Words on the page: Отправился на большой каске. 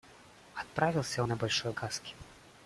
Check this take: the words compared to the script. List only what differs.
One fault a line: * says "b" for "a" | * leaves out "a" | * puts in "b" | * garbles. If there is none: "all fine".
all fine